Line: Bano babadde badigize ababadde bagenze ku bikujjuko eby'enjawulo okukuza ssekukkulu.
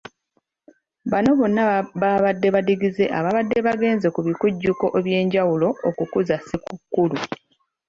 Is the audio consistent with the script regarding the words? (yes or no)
no